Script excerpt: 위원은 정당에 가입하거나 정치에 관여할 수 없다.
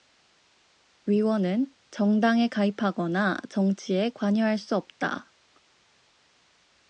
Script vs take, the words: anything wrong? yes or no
no